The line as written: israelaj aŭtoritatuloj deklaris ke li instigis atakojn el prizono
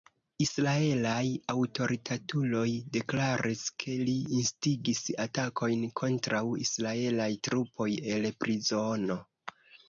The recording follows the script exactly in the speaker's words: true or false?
false